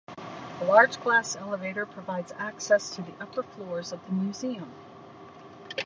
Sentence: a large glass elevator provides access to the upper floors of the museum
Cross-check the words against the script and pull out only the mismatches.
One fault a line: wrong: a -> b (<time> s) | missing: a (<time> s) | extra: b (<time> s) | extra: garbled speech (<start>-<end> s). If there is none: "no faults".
no faults